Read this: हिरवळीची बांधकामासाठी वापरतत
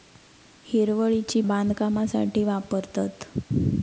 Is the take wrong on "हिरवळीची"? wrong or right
right